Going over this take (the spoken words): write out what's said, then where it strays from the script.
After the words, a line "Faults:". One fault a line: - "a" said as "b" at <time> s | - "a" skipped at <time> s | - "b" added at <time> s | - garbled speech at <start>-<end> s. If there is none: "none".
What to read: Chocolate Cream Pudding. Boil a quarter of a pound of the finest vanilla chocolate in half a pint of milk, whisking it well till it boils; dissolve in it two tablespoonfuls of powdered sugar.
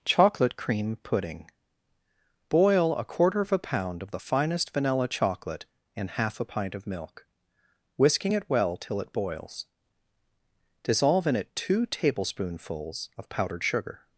Chocolate Cream Pudding. Boil a quarter of a pound of the finest vanilla chocolate in half a pint of milk, whisking it well till it boils; dissolve in it two tablespoonfuls of powdered sugar.
Faults:
none